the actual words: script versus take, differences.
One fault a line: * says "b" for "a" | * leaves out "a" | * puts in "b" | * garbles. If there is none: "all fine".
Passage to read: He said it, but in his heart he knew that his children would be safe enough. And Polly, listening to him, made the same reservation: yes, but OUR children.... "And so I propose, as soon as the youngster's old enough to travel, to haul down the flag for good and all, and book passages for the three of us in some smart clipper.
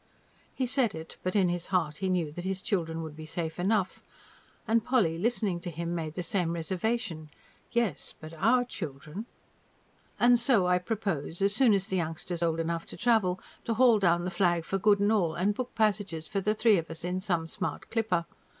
all fine